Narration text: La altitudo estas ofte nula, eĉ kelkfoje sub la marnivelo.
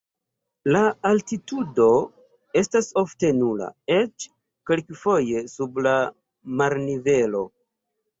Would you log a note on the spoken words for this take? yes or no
no